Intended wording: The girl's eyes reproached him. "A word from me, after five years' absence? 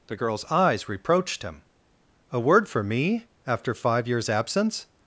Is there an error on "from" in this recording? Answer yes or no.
yes